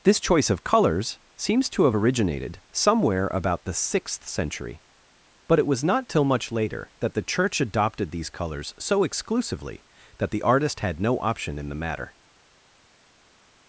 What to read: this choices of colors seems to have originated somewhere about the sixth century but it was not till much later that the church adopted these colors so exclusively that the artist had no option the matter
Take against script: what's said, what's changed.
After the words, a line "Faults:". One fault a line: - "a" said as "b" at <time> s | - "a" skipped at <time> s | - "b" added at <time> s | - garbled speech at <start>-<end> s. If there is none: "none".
this choice of colors seems to have originated somewhere about the sixth century but it was not till much later that the church adopted these colors so exclusively that the artist had no option in the matter
Faults:
- "choices" said as "choice" at 0.2 s
- "in" added at 11.6 s